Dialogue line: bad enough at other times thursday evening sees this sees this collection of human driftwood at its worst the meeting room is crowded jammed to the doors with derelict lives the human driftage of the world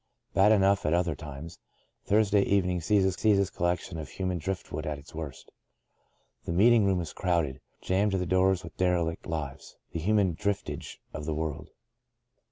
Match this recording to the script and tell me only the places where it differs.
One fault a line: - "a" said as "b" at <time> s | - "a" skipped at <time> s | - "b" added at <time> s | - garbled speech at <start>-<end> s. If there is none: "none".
none